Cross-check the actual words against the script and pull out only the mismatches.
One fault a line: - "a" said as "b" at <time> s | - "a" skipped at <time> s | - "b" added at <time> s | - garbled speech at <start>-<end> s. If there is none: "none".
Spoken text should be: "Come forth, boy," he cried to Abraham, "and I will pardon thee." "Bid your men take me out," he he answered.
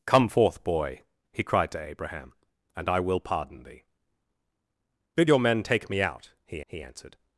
none